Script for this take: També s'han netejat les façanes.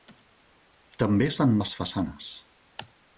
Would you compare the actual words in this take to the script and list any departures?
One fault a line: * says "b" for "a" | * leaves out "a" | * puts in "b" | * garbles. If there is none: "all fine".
* leaves out "netejat"